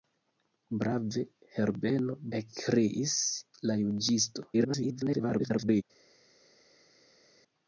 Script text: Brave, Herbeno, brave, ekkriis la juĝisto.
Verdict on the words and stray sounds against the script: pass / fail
fail